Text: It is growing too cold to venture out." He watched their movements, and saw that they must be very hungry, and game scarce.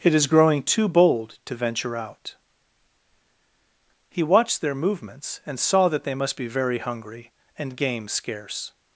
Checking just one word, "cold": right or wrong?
wrong